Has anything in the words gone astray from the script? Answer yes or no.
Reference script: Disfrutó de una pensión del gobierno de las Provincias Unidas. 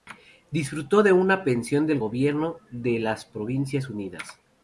no